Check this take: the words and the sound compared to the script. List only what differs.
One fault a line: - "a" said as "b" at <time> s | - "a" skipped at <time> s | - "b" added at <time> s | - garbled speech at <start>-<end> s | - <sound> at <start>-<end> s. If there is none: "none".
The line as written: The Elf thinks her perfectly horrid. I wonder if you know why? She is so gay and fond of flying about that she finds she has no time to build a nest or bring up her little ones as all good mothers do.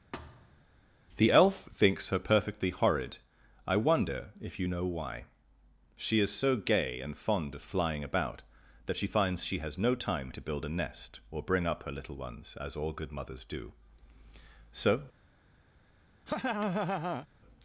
- thud at 0.1-0.7 s
- "So" added at 14.7 s
- laugh at 16.3-17.3 s